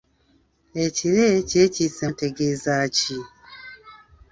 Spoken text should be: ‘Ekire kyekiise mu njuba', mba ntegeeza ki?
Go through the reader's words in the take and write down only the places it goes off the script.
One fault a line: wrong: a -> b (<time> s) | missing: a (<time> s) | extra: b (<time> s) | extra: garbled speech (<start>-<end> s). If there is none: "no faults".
missing: mu njuba mba (2.0 s)